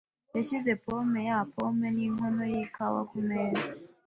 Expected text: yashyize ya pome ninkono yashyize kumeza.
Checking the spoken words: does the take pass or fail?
fail